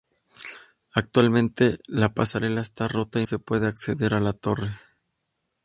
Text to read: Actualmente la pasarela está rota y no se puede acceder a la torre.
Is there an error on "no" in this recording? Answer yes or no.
yes